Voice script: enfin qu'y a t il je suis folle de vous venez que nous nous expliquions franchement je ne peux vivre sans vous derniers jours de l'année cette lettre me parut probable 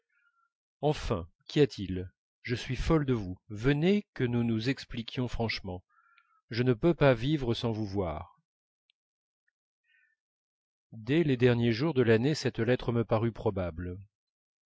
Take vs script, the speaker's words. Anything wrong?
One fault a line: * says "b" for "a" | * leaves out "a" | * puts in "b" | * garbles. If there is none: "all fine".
* puts in "pas"
* puts in "voir dès les"